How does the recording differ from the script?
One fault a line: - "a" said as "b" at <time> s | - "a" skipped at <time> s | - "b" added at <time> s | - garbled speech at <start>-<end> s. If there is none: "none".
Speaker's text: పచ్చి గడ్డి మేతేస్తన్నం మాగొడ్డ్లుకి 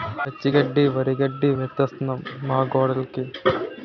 - "వరిగడ్డి" added at 0.9 s